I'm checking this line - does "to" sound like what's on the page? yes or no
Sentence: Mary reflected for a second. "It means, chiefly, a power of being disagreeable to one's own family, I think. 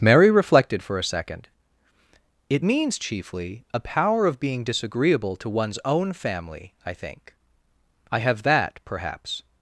yes